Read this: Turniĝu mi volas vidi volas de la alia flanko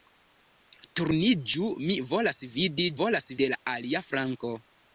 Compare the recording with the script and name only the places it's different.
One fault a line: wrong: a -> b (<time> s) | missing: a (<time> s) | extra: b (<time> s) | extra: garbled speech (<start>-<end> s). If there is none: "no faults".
no faults